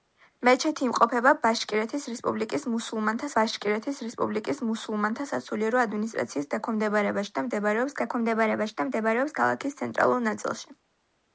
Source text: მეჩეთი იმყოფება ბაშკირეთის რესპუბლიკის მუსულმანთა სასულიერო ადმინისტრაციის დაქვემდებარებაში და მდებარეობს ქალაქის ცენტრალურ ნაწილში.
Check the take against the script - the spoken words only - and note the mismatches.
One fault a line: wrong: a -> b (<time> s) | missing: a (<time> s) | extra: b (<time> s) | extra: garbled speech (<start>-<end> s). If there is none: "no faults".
extra: ბაშკირეთის რესპუბლიკის მუსულმანთა (3.4 s)
extra: დაქვემდებარებაში და მდებარეობს (8.0 s)